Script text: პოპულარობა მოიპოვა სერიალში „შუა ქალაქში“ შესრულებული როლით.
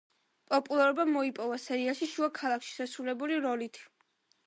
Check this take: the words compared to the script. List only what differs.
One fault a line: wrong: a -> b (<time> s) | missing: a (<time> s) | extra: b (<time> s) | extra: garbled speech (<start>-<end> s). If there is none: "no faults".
no faults